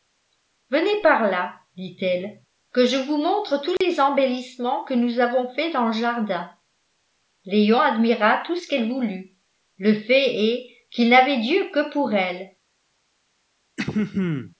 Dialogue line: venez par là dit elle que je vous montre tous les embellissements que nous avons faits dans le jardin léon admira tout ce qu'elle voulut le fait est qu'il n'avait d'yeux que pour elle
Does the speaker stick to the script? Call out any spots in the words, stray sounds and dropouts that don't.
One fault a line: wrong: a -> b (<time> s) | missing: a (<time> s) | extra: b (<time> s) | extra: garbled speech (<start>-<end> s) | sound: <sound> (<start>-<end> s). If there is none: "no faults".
sound: dropout (3.8-3.8 s)
sound: throat clearing (13.8-14.5 s)